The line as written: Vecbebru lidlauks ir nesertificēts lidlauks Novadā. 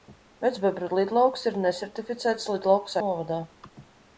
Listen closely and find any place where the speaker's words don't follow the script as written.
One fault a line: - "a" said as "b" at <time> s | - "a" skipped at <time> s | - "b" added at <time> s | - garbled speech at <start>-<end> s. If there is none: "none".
none